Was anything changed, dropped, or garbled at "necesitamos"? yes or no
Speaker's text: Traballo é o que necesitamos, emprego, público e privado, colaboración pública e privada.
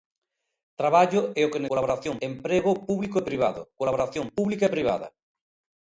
yes